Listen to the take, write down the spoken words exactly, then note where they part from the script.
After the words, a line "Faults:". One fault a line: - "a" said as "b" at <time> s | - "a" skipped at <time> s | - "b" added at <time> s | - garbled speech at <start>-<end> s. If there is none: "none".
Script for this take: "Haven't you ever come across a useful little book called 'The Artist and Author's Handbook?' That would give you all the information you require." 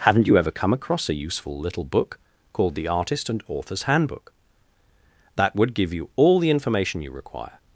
"Haven't you ever come across a useful little book called 'The Artist and Author's Handbook?' That would give you all the information you require."
Faults:
none